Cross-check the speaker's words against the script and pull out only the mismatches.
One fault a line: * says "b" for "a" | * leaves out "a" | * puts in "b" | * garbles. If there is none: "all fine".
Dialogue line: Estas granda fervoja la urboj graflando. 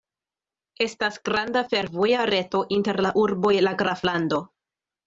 * puts in "reto inter"
* puts in "la"